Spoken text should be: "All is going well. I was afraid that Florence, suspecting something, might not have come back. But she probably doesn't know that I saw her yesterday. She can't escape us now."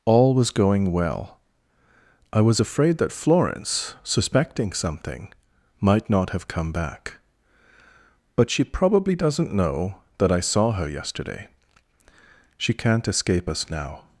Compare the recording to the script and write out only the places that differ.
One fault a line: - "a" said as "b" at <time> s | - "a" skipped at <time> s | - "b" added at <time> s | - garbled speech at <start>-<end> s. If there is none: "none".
- "is" said as "was" at 0.3 s